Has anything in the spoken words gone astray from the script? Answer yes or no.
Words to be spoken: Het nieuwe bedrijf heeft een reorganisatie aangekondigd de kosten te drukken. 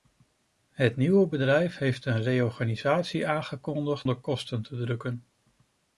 no